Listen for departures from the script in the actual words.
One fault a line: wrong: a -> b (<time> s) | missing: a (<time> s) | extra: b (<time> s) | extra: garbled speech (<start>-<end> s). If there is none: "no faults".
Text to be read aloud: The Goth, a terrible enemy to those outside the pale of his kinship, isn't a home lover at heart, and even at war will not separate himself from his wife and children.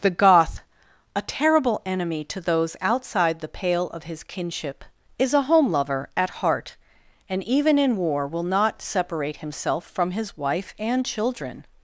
wrong: isn't -> is (5.2 s)
wrong: at -> in (7.8 s)